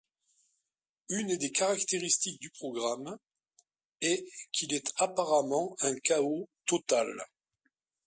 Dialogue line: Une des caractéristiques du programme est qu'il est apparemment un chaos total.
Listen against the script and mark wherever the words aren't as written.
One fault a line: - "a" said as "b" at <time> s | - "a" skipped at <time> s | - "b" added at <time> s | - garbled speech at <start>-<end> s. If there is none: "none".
none